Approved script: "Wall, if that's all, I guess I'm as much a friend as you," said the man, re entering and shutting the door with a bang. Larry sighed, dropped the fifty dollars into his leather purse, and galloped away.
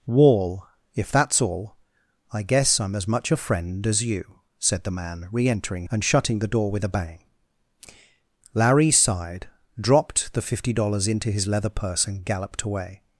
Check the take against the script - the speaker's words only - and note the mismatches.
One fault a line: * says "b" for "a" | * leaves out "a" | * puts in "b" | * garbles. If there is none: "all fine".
all fine